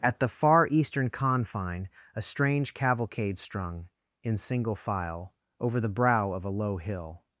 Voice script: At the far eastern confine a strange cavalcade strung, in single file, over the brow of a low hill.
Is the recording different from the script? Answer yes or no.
no